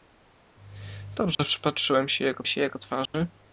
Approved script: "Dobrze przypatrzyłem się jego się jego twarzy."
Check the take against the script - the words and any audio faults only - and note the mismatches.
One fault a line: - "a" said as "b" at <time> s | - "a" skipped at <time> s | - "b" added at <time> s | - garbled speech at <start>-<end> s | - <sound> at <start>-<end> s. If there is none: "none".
- dropout at 1.3-1.4 s
- dropout at 3.1-3.1 s